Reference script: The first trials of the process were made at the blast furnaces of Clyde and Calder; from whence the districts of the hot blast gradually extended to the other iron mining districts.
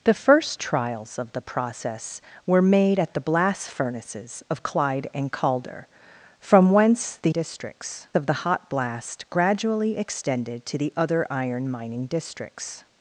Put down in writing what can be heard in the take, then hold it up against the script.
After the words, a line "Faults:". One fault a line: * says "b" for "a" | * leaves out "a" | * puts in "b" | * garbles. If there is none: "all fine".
The first trials of the process were made at the blast furnaces of Clyde and Calder; from whence the districts of the hot blast gradually extended to the other iron mining districts.
Faults:
all fine